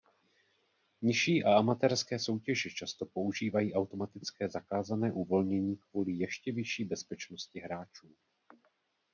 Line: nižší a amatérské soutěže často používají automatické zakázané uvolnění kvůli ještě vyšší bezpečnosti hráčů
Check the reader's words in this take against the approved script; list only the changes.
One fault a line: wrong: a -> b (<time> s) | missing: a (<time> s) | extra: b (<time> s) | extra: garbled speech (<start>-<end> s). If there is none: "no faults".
no faults